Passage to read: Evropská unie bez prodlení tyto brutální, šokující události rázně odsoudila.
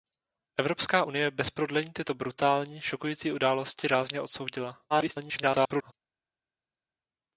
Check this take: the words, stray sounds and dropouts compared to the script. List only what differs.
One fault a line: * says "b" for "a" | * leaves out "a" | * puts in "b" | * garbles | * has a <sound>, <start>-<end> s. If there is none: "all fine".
* garbles